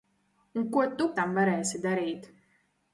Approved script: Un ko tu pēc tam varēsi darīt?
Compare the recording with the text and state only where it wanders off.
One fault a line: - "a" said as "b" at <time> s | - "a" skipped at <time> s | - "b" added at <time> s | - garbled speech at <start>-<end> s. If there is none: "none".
- "pēc" skipped at 1.1 s